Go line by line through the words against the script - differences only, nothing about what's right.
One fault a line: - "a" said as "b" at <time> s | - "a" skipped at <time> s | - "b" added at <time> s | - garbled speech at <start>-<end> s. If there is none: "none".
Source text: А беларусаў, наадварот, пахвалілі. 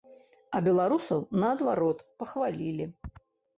none